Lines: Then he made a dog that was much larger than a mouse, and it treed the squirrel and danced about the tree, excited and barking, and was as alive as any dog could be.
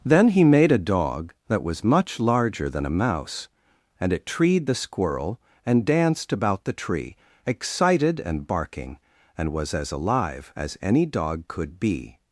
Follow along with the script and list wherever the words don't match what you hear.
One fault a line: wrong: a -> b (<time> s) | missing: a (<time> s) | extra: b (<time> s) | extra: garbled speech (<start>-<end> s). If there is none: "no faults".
no faults